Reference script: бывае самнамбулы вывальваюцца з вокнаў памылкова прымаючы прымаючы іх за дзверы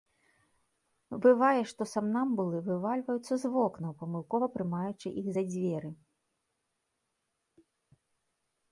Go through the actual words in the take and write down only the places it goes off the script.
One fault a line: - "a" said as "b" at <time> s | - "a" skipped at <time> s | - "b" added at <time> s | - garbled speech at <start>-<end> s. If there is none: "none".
- "што" added at 1.7 s
- "прымаючы" skipped at 5.1 s